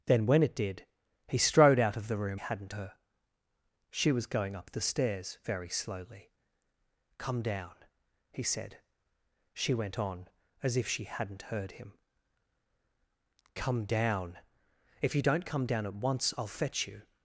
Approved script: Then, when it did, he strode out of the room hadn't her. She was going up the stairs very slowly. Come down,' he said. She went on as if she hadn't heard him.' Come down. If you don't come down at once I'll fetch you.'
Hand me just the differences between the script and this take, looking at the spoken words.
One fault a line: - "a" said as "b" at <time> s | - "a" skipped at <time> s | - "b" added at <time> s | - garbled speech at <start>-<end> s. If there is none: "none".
none